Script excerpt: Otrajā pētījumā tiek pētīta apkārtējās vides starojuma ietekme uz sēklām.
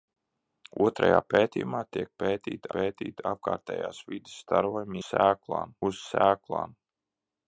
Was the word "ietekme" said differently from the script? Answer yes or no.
yes